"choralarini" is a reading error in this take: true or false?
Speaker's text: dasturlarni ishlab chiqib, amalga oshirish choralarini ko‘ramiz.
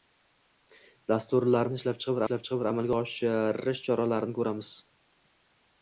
false